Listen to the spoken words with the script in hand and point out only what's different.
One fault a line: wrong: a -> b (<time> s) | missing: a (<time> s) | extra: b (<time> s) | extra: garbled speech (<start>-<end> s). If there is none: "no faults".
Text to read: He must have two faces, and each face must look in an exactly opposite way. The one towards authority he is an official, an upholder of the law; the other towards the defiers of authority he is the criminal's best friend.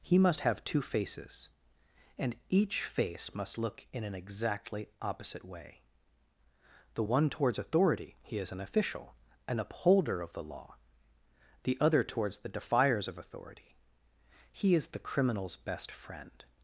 no faults